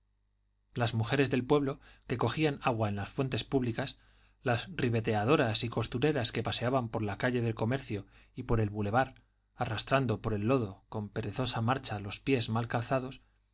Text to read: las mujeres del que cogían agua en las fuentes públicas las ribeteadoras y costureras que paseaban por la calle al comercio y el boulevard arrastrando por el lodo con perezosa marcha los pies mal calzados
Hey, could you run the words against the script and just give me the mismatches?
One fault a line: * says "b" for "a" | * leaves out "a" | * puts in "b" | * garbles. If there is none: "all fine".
* puts in "pueblo"
* says "del" for "al"
* puts in "por"